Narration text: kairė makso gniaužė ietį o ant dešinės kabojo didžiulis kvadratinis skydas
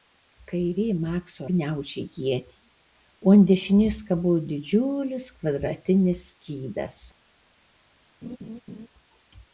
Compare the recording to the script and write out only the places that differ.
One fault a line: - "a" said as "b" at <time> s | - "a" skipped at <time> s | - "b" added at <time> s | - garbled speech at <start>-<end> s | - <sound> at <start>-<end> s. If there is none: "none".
- laugh at 8.2-8.9 s